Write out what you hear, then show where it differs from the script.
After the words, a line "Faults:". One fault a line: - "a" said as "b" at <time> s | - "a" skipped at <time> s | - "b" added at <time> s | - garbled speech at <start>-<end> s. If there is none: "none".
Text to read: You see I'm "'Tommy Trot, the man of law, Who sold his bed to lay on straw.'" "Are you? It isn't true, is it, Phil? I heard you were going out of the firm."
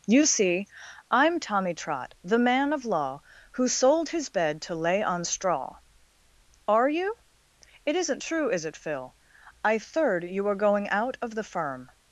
You see I'm "'Tommy Trot, the man of law, Who sold his bed to lay on straw.'" "Are you? It isn't true, is it, Phil? I third you were going out of the firm."
Faults:
- "heard" said as "third" at 9.8 s